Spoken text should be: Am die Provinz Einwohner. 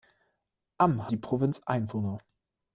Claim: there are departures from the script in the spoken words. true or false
false